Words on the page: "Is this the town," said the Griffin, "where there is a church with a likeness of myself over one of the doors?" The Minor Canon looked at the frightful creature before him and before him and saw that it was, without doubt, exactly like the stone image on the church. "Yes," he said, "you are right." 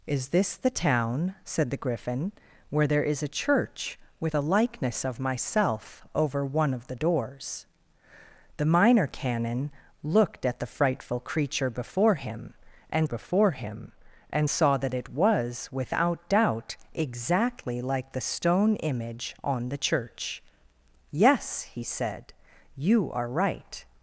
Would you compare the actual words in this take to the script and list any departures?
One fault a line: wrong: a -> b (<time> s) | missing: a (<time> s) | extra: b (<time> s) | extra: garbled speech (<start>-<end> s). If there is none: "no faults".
no faults